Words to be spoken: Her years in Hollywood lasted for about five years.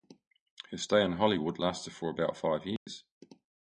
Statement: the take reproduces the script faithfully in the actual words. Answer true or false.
false